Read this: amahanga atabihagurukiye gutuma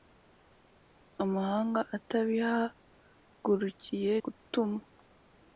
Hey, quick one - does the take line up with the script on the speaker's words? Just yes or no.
yes